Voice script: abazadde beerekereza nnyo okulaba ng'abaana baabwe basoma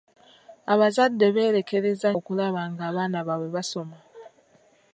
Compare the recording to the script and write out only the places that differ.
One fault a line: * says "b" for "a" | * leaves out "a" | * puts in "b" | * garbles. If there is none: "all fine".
* leaves out "nnyo"